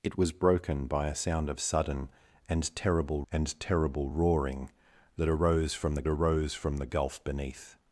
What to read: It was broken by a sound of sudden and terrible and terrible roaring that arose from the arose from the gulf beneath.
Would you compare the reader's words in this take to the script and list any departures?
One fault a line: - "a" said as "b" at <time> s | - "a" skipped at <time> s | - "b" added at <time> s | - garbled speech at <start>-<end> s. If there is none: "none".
none